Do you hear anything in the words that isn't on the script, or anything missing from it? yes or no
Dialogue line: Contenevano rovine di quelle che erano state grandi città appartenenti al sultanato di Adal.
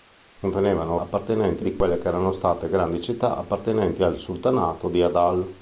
yes